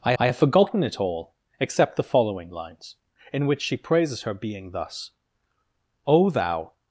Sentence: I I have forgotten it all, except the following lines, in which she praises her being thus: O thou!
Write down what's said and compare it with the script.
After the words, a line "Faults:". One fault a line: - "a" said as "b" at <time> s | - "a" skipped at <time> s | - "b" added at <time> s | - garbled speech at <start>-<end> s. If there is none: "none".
I I have forgotten it all, except the following lines, in which she praises her being thus: O thou!
Faults:
none